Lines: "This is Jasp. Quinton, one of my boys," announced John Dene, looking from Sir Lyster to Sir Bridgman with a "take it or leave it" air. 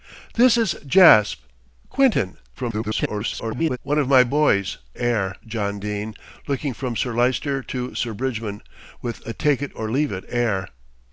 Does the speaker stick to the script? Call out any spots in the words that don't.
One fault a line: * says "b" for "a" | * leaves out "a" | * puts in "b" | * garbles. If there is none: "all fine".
* garbles
* says "air" for "announced"